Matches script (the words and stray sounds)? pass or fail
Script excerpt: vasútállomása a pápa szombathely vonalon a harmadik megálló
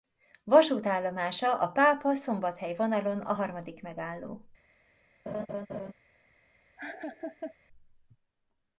fail